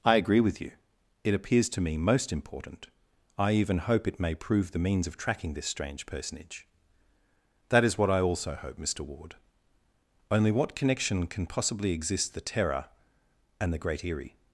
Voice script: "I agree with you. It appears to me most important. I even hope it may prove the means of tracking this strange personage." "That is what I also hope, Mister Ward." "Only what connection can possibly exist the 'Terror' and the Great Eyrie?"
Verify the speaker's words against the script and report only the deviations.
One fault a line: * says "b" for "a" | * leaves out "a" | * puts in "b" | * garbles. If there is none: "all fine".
all fine